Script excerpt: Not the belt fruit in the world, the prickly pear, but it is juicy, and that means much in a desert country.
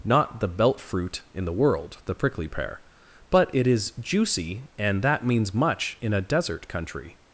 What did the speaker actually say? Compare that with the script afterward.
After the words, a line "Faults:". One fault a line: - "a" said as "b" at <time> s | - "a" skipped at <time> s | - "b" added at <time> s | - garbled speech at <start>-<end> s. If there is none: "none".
Not the belt fruit in the world, the prickly pear, but it is juicy, and that means much in a desert country.
Faults:
none